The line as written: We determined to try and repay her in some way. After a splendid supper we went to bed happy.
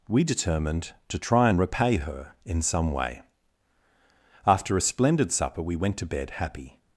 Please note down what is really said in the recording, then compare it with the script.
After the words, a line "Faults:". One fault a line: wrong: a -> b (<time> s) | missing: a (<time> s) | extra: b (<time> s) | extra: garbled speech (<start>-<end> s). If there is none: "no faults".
We determined to try and repay her in some way. After a splendid supper we went to bed happy.
Faults:
no faults